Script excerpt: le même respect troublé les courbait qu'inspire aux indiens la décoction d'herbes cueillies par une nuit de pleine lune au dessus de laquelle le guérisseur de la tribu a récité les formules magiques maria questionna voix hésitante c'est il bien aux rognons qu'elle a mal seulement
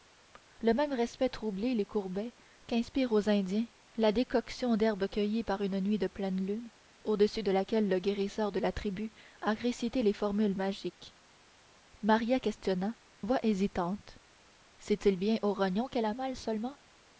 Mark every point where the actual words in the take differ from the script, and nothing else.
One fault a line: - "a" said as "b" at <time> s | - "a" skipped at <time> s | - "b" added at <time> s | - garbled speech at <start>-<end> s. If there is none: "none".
none